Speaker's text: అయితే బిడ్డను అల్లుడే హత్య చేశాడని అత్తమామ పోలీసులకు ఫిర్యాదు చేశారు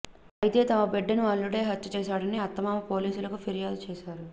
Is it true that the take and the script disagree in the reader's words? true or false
true